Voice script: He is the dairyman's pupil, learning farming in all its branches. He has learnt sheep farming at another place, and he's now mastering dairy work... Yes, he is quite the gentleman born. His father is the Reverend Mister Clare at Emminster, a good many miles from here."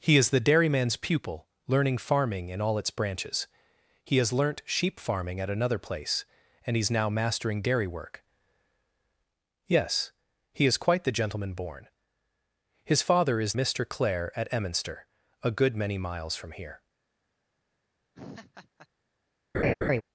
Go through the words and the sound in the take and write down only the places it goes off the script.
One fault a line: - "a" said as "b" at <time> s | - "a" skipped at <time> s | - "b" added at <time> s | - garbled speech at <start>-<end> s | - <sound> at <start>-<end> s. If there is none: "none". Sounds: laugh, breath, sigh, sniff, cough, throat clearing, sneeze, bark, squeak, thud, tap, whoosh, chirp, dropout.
- "the Reverend" skipped at 13.5 s
- laugh at 18.1-18.9 s
- laugh at 19.5-20.0 s